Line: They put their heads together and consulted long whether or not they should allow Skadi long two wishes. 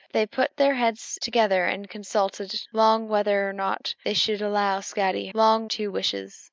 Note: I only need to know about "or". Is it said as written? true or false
true